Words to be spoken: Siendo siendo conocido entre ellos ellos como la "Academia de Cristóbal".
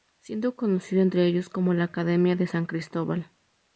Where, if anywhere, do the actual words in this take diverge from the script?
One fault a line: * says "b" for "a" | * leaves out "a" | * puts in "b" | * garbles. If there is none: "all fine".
* leaves out "siendo"
* leaves out "ellos"
* puts in "San"